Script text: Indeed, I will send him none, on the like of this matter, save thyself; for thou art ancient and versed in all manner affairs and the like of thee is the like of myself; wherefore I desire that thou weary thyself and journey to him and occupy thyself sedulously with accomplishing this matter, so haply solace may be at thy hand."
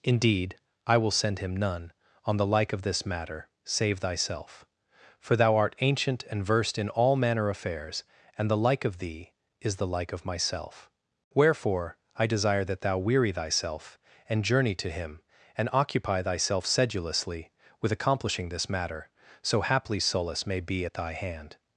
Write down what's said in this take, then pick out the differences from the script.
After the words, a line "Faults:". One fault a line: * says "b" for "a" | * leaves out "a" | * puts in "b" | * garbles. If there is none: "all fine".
Indeed, I will send him none, on the like of this matter, save thyself; for thou art ancient and versed in all manner affairs and the like of thee is the like of myself; wherefore I desire that thou weary thyself and journey to him and occupy thyself sedulously with accomplishing this matter, so haply solace may be at thy hand."
Faults:
all fine